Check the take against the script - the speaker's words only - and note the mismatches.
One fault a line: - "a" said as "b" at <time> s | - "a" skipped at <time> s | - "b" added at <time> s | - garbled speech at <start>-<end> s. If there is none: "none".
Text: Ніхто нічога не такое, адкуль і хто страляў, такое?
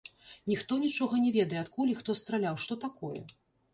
- "такое" said as "ведае" at 1.4 s
- "што" added at 2.6 s